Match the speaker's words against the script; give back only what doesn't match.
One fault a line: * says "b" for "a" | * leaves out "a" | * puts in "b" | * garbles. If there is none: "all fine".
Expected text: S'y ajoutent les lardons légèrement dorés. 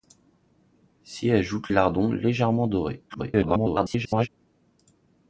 * leaves out "les"
* garbles